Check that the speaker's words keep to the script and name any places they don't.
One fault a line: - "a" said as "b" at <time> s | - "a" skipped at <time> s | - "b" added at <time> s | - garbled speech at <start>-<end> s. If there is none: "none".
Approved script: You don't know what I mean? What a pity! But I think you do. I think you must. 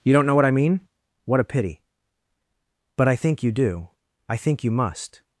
none